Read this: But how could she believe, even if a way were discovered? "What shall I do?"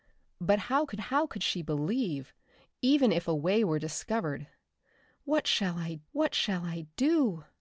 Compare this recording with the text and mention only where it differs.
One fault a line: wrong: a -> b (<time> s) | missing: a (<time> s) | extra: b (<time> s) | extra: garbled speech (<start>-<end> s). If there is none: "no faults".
extra: how could (1.0 s)
extra: what shall I (6.1 s)